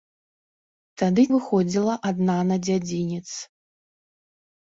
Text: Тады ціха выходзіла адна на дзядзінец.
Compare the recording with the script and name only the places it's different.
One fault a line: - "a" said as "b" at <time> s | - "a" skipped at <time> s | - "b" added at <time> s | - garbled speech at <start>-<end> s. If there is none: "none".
- "ціха" skipped at 1.2 s